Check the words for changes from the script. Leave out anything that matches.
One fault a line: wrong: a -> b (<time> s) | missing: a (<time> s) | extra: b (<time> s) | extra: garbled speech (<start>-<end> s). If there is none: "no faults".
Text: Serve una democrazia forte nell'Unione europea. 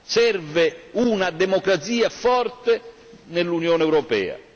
no faults